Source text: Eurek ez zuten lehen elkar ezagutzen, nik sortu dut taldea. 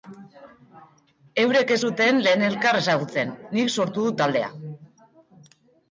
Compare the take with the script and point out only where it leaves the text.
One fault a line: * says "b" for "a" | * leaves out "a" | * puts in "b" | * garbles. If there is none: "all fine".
all fine